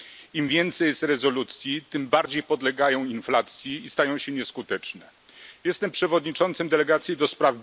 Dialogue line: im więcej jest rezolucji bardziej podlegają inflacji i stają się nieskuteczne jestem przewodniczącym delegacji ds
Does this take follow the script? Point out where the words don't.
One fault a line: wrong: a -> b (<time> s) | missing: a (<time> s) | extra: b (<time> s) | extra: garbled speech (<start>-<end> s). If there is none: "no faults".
extra: tym (1.8 s)